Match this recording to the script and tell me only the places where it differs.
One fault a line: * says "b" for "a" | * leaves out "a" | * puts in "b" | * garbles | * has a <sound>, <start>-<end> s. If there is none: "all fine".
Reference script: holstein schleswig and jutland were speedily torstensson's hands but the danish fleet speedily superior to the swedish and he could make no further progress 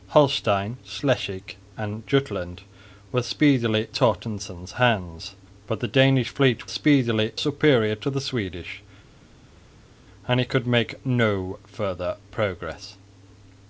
all fine